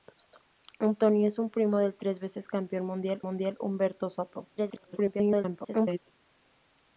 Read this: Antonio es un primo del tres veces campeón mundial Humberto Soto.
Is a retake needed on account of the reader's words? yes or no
yes